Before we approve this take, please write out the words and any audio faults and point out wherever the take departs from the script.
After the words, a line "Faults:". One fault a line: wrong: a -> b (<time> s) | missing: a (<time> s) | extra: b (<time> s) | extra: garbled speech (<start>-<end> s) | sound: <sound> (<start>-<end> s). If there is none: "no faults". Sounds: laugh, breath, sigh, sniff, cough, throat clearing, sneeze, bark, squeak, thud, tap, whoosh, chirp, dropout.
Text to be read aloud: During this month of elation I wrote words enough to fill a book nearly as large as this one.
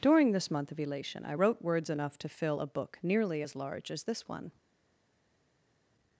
During this month of elation I wrote words enough to fill a book nearly as large as this one.
Faults:
no faults